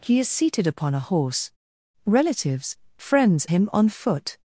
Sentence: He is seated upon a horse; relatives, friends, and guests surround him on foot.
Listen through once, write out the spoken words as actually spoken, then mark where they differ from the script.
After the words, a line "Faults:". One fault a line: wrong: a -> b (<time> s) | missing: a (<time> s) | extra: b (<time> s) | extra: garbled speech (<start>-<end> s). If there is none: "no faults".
He is seated upon a horse; relatives, friends, him on foot.
Faults:
missing: and guests surround (3.5 s)